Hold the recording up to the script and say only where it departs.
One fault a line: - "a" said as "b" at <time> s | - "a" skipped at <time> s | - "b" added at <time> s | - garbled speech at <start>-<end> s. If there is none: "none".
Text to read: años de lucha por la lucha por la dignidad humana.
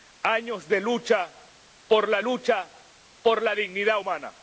none